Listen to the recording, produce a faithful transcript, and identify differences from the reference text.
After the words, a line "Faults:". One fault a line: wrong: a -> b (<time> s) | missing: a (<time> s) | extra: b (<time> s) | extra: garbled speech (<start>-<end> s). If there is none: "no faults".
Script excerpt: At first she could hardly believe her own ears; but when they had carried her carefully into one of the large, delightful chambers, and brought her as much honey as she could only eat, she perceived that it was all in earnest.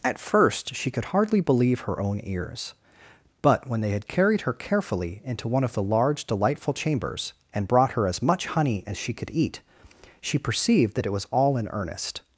At first she could hardly believe her own ears; but when they had carried her carefully into one of the large, delightful chambers, and brought her as much honey as she could eat, she perceived that it was all in earnest.
Faults:
missing: only (9.3 s)